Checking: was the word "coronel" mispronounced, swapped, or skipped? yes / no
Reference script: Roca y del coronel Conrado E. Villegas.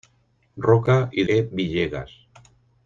yes